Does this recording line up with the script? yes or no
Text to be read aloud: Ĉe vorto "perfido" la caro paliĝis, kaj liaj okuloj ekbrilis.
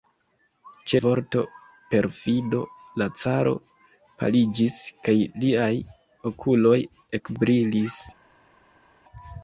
yes